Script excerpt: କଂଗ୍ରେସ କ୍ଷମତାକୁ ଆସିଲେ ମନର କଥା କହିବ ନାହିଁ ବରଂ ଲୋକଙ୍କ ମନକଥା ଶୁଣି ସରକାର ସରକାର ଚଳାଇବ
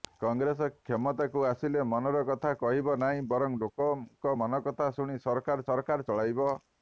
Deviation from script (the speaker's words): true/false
false